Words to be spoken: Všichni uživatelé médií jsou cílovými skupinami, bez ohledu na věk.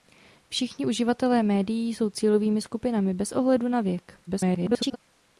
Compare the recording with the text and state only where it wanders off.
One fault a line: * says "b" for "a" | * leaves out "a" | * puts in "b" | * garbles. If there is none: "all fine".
* garbles